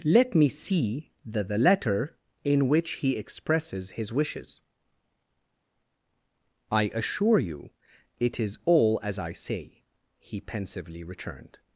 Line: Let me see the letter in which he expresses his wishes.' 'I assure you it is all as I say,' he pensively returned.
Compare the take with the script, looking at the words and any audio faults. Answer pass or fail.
fail